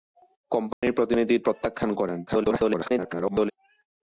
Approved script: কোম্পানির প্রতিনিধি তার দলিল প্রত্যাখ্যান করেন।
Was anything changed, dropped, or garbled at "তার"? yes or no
yes